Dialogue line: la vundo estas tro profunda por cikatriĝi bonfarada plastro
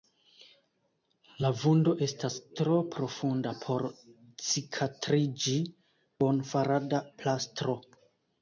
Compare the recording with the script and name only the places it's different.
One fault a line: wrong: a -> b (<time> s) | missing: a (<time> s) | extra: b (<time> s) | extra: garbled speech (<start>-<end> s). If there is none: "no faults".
no faults